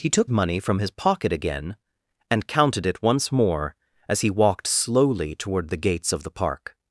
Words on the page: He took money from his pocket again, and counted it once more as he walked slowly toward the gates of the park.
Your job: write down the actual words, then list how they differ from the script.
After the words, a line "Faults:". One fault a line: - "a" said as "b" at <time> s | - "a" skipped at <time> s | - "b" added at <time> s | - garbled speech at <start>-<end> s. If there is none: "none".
He took money from his pocket again, and counted it once more as he walked slowly toward the gates of the park.
Faults:
none